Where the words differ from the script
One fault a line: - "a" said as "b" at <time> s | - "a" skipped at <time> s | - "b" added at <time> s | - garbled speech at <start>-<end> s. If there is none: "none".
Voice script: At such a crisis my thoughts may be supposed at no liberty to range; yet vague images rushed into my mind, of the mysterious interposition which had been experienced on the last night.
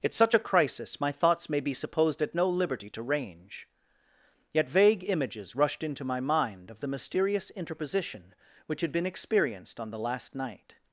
none